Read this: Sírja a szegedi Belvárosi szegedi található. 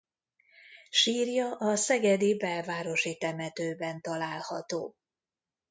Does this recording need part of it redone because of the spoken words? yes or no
yes